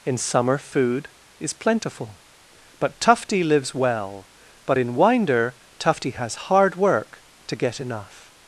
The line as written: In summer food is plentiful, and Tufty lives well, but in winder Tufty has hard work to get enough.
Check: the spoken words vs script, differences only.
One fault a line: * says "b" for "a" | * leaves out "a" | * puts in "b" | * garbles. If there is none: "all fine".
* says "but" for "and"